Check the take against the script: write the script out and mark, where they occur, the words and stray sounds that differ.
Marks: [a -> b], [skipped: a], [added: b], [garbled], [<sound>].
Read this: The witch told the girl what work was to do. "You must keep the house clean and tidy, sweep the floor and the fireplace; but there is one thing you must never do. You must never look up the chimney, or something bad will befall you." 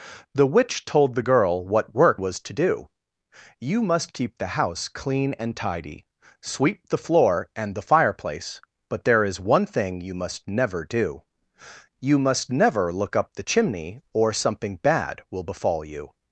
The witch told the girl what work was to do. "You must keep the house clean and tidy, sweep the floor and the fireplace; but there is one thing you must never do. You must never look up the chimney, or something bad will befall you."